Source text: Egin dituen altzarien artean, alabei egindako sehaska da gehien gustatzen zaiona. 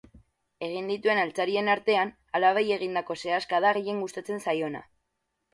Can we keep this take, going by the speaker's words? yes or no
yes